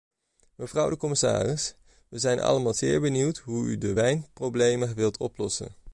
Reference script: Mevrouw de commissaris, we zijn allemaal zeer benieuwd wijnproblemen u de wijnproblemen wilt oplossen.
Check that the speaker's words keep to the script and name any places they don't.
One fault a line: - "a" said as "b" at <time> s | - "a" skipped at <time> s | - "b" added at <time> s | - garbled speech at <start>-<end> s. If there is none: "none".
- "wijnproblemen" said as "hoe" at 3.4 s